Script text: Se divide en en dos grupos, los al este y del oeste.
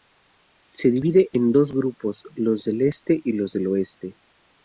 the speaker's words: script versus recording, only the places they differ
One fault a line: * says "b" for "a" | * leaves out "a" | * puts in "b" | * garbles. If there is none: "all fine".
* leaves out "en"
* says "del" for "al"
* puts in "los"